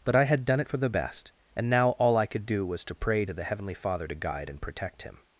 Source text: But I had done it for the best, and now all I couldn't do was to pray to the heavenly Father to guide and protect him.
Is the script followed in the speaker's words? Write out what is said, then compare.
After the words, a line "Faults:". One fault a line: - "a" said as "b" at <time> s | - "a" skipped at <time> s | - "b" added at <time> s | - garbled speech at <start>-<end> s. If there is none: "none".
But I had done it for the best, and now all I could do was to pray to the heavenly Father to guide and protect him.
Faults:
- "couldn't" said as "could" at 2.3 s